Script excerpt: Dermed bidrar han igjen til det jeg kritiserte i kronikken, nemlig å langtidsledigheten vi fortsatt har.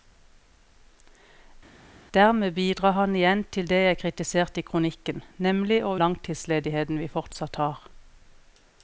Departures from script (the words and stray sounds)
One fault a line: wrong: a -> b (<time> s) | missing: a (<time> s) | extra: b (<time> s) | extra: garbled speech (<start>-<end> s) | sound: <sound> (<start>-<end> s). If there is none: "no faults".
no faults